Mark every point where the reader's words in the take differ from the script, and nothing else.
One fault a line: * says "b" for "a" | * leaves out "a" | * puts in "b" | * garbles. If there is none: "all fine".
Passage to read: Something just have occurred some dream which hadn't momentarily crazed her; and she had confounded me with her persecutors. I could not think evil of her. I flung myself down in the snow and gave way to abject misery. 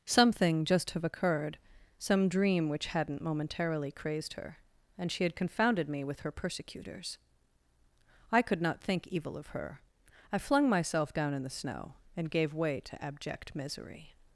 all fine